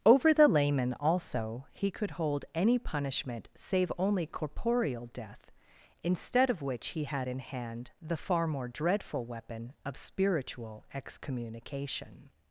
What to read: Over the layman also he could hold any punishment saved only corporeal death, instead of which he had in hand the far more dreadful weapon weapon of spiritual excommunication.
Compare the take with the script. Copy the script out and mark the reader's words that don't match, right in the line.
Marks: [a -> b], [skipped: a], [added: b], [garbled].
Over the layman also he could hold any punishment [saved -> save] only corporeal death, instead of which he had in hand the far more dreadful weapon [skipped: weapon] of spiritual excommunication.